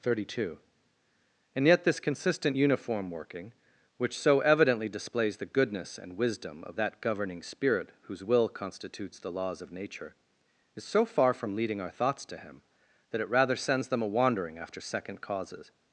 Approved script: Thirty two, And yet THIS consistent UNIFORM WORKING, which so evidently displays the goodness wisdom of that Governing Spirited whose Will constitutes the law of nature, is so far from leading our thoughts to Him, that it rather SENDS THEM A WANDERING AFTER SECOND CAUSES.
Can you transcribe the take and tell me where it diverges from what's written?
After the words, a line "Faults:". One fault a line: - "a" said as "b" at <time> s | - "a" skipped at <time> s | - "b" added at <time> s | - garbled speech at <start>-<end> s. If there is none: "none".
Thirty two, And yet THIS consistent UNIFORM WORKING, which so evidently displays the goodness and wisdom of that Governing Spirit whose Will constitutes the laws of nature, is so far from leading our thoughts to Him, that it rather SENDS THEM A WANDERING AFTER SECOND CAUSES.
Faults:
- "and" added at 6.0 s
- "Spirited" said as "Spirit" at 7.4 s
- "law" said as "laws" at 9.3 s